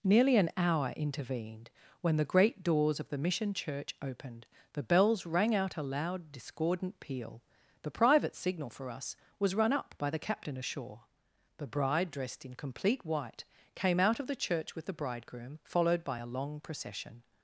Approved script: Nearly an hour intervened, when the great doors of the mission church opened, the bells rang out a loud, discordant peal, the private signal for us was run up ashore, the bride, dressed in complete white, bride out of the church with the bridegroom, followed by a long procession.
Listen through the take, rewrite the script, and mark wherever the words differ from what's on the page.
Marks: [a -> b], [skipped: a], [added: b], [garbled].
Nearly an hour intervened, when the great doors of the mission church opened, the bells rang out a loud, discordant peal, the private signal for us was run up [added: by the captain] ashore, the bride, dressed in complete white, [bride -> came] out of the church with the bridegroom, followed by a long procession.